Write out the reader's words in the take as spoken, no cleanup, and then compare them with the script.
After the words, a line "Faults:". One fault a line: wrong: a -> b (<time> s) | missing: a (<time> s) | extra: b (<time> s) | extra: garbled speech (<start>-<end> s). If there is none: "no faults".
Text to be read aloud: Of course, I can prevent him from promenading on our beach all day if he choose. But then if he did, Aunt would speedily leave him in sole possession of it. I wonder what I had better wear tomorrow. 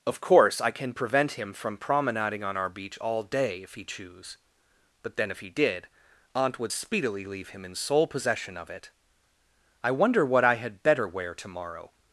Of course, I can prevent him from promenading on our beach all day if he choose. But then if he did, Aunt would speedily leave him in sole possession of it. I wonder what I had better wear tomorrow.
Faults:
no faults